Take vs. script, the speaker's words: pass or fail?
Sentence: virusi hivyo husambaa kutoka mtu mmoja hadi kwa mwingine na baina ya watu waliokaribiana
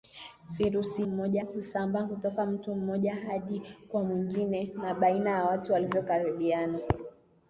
fail